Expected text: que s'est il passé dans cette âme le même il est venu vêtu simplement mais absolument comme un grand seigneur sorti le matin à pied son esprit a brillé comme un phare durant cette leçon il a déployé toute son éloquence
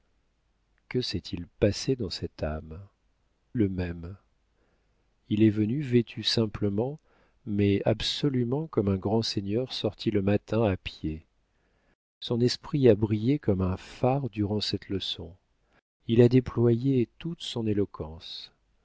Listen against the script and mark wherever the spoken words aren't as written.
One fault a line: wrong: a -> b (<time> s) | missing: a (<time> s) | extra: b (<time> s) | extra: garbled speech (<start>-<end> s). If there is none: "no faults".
no faults